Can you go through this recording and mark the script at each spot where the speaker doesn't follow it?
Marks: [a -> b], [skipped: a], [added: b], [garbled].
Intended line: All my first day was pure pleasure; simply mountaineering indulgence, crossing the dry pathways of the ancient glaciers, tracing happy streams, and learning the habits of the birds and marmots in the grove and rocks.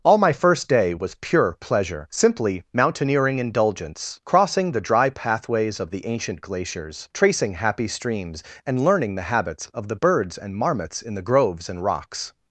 All my first day was pure pleasure; simply mountaineering indulgence, crossing the dry pathways of the ancient glaciers, tracing happy streams, and learning the habits of the birds and marmots in the [grove -> groves] and rocks.